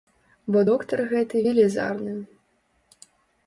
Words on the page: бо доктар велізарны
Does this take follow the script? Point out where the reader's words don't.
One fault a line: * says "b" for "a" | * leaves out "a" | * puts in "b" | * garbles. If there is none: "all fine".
* puts in "гэты"